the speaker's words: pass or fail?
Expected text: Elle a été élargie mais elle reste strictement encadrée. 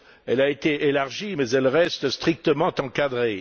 pass